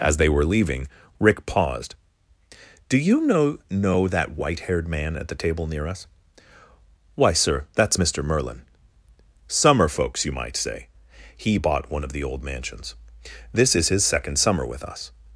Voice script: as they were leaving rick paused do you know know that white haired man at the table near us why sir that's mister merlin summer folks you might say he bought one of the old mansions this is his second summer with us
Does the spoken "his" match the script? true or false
true